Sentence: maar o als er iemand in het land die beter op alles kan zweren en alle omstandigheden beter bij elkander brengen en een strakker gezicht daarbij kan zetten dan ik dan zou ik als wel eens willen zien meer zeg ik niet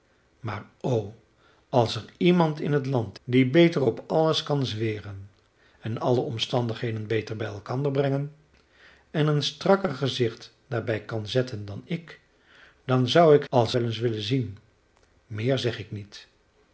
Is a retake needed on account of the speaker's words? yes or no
no